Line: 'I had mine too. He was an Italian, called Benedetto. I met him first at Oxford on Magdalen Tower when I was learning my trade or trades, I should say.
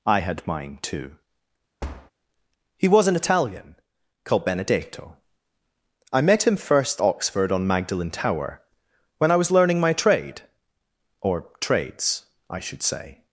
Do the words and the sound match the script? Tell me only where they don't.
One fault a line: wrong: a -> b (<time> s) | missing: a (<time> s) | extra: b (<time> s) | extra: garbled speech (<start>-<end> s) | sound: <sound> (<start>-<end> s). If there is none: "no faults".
sound: thud (1.8-2.1 s)
missing: at (7.0 s)